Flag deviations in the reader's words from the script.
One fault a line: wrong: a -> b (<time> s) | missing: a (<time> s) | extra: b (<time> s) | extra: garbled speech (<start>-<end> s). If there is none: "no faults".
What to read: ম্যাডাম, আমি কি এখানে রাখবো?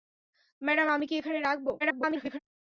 extra: garbled speech (1.8-2.4 s)